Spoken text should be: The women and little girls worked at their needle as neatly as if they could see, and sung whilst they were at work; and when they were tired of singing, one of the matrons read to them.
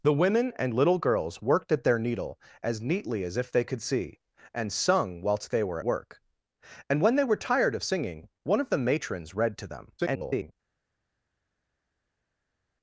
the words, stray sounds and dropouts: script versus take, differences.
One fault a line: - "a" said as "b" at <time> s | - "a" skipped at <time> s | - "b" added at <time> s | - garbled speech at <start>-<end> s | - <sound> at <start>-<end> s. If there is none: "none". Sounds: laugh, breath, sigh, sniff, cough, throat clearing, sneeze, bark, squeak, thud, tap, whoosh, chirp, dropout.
- "at" skipped at 5.8 s
- garbled speech at 10.0-10.5 s